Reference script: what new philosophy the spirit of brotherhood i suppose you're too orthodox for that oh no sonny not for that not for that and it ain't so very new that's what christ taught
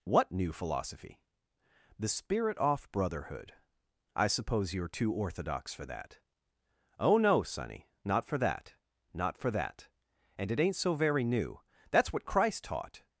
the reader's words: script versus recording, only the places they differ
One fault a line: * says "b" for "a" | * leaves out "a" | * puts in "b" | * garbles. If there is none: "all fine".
* says "off" for "of"